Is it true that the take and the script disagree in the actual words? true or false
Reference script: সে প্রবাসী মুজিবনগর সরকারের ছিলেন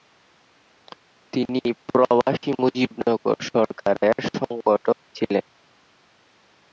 true